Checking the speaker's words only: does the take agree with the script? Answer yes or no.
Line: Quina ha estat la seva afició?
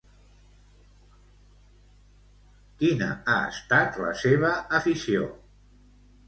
yes